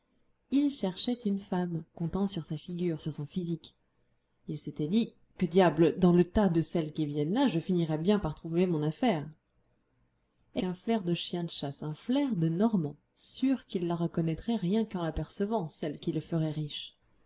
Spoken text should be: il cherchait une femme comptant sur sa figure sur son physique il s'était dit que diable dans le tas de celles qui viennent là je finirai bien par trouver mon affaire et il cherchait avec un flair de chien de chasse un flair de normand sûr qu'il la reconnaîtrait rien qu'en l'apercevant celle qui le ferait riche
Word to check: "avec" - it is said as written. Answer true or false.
false